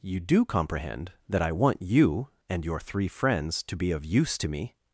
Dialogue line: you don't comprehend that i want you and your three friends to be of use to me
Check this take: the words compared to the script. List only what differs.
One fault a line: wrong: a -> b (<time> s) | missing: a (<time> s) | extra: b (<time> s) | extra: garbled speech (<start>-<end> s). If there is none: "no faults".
wrong: don't -> do (0.2 s)